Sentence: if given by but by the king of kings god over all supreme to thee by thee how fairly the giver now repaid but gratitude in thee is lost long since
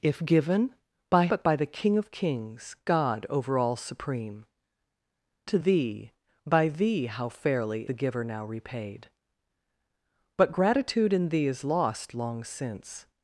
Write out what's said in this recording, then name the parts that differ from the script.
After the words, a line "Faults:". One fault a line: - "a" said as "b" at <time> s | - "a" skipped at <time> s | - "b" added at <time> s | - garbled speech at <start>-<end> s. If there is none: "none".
if given by but by the king of kings god over all supreme to thee by thee how fairly the giver now repaid but gratitude in thee is lost long since
Faults:
none